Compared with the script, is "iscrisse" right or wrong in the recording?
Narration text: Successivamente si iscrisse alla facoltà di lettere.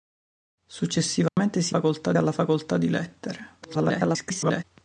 wrong